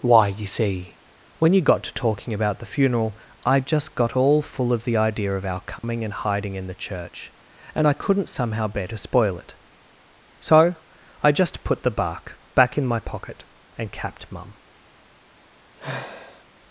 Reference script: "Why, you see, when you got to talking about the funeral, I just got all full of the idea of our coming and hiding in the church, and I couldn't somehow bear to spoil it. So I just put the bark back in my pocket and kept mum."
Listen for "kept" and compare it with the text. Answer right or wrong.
wrong